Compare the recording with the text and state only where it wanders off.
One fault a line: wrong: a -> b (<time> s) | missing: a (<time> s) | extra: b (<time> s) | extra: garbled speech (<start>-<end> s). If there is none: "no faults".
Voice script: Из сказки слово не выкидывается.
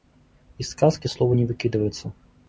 no faults